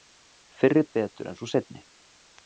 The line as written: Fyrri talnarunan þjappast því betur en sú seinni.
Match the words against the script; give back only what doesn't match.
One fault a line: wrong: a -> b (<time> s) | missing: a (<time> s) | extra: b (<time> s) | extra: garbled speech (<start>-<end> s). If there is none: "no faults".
missing: talnarunan þjappast (0.8 s)